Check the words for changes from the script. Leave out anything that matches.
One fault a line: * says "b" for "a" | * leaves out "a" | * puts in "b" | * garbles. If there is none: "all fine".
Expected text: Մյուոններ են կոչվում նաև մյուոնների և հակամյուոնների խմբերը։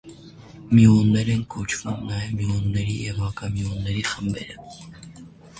all fine